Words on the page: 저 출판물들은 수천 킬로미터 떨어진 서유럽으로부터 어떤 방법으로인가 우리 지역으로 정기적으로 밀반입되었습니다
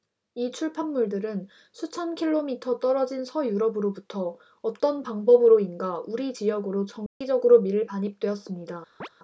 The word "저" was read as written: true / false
false